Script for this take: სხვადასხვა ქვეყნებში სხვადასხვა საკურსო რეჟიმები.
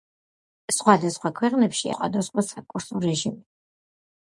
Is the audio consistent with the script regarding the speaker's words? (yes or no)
yes